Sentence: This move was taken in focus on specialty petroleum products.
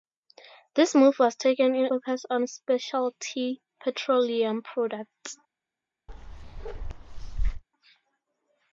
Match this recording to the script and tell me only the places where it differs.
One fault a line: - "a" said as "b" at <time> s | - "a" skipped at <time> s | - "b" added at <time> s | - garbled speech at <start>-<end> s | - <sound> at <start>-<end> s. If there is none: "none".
- bark at 6.1-7.6 s